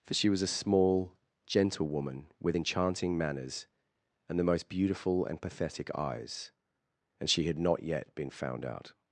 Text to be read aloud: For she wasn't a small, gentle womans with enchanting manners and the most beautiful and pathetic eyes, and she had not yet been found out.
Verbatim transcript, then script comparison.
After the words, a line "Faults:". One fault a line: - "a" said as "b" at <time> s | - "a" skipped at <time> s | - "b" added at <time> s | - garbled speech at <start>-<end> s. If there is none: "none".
For she was a small, gentle woman with enchanting manners and the most beautiful and pathetic eyes, and she had not yet been found out.
Faults:
- "wasn't" said as "was" at 0.3 s
- "womans" said as "woman" at 1.9 s